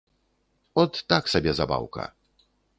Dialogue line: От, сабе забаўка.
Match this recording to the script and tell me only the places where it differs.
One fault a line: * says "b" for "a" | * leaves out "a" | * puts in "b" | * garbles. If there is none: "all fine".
* puts in "так"